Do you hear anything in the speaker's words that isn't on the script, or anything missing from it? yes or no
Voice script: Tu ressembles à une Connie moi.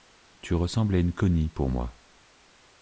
yes